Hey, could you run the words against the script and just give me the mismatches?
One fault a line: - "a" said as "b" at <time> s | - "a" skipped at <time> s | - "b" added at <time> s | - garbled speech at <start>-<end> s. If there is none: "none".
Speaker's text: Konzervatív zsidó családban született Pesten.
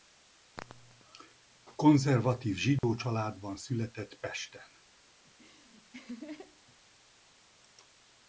none